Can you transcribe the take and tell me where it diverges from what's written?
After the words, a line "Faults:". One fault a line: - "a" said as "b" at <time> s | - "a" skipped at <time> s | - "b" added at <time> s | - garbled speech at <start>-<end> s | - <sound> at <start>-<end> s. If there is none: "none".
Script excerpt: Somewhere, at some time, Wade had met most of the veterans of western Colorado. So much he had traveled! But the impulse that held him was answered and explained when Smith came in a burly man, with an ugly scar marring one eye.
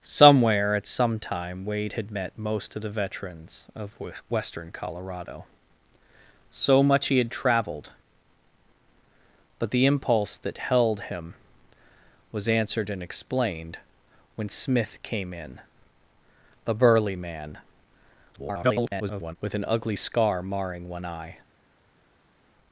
Somewhere, at some time, Wade had met most of the veterans of western Colorado. So much he had traveled! But the impulse that held him was answered and explained when Smith came in a burly man, [garbled] with an ugly scar marring one eye.
Faults:
- garbled speech at 18.3-19.4 s